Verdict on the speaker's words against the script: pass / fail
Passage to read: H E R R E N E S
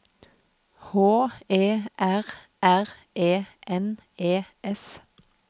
pass